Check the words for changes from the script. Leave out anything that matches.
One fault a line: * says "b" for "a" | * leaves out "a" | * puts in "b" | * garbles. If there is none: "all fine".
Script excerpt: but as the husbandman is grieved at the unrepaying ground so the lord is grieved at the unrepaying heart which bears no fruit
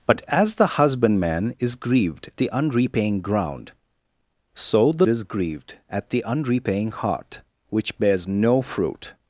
* leaves out "at"
* leaves out "lord"